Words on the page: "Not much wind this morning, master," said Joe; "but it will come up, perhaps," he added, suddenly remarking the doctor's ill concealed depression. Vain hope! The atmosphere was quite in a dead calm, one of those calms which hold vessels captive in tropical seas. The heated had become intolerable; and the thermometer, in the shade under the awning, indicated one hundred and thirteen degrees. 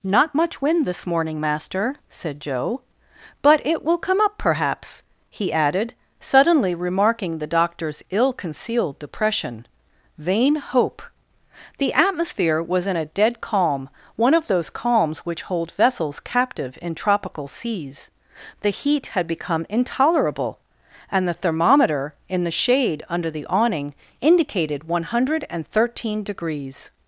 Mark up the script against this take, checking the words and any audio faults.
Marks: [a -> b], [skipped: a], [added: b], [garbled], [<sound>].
"Not much wind this morning, master," said Joe; "but it will come up, perhaps," he added, suddenly remarking the doctor's ill concealed depression. Vain hope! The atmosphere was [skipped: quite] in a dead calm, one of those calms which hold vessels captive in tropical seas. The [heated -> heat] had become intolerable; and the thermometer, in the shade under the awning, indicated one hundred and thirteen degrees.